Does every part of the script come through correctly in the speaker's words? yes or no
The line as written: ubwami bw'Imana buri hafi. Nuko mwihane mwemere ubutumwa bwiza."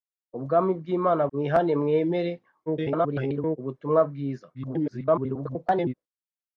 no